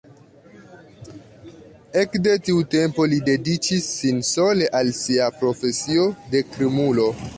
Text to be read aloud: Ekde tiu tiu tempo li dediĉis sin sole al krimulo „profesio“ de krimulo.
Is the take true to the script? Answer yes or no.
no